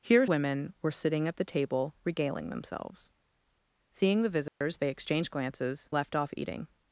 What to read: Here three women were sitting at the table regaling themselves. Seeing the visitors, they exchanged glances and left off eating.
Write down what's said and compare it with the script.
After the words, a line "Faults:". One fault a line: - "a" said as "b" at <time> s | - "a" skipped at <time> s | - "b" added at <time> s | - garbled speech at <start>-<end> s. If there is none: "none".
Here women were sitting at the table regaling themselves. Seeing the visitors, they exchanged glances left off eating.
Faults:
- "three" skipped at 0.2 s
- "and" skipped at 5.9 s